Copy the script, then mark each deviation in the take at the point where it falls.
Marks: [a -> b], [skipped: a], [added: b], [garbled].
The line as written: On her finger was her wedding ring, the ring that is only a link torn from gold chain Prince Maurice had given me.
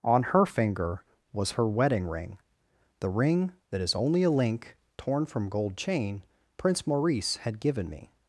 On her finger was her wedding ring, the ring that is only a link torn from gold chain Prince Maurice had given me.